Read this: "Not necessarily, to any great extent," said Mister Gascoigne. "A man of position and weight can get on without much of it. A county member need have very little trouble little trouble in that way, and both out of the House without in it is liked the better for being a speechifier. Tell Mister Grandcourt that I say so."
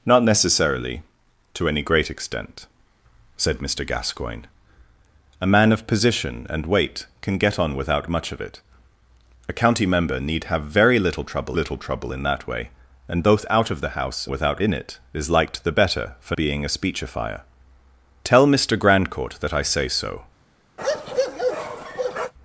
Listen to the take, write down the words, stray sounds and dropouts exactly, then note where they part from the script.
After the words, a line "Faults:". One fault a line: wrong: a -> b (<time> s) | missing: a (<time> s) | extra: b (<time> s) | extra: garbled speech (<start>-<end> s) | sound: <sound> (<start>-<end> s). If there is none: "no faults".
"Not necessarily, to any great extent," said Mister Gascoigne. "A man of position and weight can get on without much of it. A county member need have very little trouble little trouble in that way, and both out of the House without in it is liked the better for being a speechifier. Tell Mister Grandcourt that I say so."
Faults:
sound: bark (20.8-22.3 s)